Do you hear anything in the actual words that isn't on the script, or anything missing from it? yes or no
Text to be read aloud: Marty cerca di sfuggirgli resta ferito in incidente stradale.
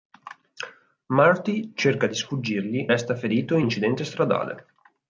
no